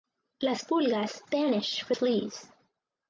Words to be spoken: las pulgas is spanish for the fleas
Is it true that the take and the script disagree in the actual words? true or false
true